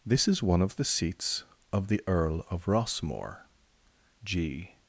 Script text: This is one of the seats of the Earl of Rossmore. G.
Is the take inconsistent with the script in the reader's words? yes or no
no